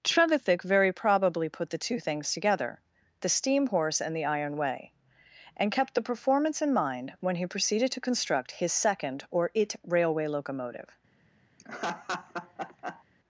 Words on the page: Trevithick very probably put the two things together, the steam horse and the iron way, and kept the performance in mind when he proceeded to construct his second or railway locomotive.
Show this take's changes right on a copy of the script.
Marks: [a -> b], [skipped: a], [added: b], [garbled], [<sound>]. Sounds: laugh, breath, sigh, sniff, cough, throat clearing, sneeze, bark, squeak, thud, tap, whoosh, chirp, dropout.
Trevithick very probably put the two things together, the steam horse and the iron way, and kept the performance in mind when he proceeded to construct his second or [added: it] railway locomotive. [laugh]